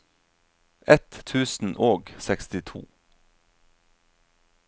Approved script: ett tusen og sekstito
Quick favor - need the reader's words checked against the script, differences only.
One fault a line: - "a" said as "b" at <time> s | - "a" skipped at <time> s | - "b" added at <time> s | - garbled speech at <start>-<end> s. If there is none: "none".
none